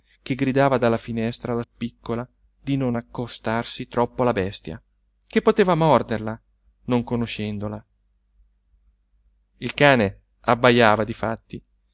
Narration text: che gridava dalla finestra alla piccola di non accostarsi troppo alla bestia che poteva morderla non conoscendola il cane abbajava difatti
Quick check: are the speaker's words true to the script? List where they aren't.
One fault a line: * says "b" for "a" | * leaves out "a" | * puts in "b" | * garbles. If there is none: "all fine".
all fine